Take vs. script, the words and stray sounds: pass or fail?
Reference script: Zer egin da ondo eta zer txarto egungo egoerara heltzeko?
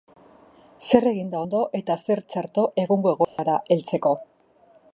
fail